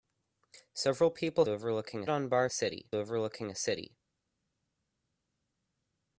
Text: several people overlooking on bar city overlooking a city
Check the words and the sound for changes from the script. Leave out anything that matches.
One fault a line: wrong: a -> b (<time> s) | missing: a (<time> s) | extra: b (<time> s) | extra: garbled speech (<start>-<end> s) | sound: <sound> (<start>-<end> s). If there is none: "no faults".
no faults